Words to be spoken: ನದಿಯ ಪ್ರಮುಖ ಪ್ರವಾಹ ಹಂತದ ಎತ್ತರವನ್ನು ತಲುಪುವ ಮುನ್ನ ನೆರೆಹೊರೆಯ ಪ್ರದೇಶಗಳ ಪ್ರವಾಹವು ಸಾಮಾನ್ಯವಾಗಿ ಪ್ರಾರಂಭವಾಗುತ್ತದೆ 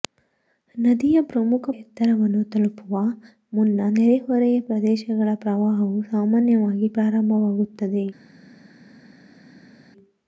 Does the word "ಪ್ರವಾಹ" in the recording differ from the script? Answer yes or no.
yes